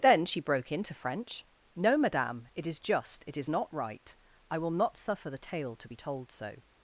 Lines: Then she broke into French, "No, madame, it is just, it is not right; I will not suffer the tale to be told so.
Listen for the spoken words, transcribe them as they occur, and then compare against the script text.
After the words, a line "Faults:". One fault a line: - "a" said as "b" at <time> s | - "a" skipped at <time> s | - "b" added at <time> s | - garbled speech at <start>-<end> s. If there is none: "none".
Then she broke into French, "No, madame, it is just, it is not right; I will not suffer the tale to be told so.
Faults:
none